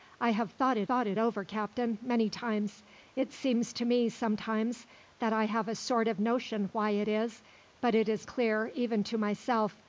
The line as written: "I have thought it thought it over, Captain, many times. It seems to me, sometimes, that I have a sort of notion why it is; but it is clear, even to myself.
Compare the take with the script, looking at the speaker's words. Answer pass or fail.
pass